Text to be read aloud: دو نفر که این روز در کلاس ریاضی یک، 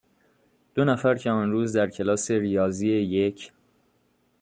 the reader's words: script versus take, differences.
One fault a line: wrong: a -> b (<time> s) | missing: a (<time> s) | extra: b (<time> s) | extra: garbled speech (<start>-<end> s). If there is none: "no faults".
wrong: این -> آن (1.3 s)